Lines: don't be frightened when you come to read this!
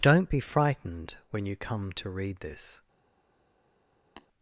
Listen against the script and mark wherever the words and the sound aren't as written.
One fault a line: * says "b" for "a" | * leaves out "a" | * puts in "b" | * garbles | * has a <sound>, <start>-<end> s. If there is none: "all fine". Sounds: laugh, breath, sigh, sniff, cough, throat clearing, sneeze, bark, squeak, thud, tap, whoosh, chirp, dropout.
* has a tap, 4.2-4.3 s